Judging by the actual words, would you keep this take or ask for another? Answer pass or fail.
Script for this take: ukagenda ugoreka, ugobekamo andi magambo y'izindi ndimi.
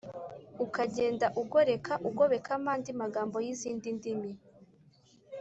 pass